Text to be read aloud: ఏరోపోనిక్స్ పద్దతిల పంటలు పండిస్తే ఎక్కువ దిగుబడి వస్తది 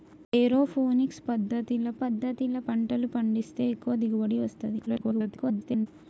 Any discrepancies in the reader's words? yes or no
yes